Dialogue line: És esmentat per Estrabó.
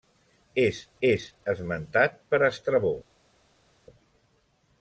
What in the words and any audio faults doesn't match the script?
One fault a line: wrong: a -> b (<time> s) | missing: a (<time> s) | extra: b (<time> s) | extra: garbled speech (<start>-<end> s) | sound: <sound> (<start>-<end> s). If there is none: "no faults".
extra: és (1.1 s)